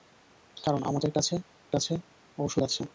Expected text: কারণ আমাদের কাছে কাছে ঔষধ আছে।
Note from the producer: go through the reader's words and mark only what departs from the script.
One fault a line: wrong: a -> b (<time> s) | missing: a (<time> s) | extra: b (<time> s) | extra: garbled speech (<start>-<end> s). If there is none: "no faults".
no faults